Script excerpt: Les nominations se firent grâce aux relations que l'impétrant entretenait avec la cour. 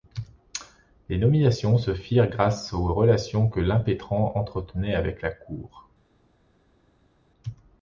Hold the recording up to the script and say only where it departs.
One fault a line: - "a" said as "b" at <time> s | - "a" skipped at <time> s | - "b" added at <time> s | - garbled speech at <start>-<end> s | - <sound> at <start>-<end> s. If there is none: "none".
none